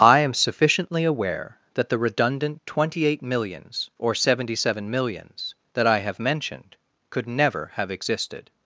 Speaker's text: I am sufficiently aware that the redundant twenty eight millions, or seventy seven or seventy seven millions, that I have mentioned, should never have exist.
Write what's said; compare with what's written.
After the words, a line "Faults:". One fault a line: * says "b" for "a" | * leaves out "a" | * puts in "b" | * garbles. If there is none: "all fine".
I am sufficiently aware that the redundant twenty eight millions, or seventy seven millions, that I have mentioned, could never have existed.
Faults:
* leaves out "or seventy seven"
* says "could" for "should"
* says "existed" for "exist"